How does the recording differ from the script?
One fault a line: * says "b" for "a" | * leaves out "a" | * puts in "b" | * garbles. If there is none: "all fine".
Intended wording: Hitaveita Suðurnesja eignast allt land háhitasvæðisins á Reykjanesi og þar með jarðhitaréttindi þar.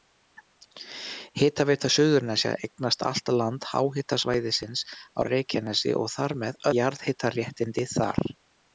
all fine